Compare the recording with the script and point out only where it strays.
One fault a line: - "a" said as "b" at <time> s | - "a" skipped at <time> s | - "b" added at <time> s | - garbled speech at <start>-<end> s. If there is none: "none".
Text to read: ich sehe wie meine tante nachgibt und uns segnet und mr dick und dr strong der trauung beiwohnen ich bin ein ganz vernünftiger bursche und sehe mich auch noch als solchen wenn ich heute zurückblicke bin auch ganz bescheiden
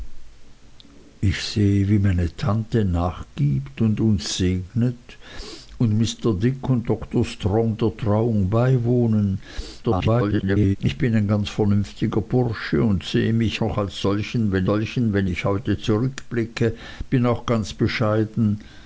- garbled speech at 9.8-10.8 s
- "auch" skipped at 13.6 s
- "solchen wenn" added at 14.6 s